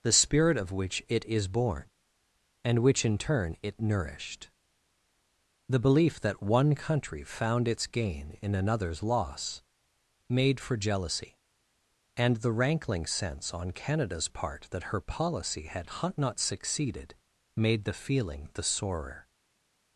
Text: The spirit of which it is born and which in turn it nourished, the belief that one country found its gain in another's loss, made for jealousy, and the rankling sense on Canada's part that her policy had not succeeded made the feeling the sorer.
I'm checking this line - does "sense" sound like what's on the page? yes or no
yes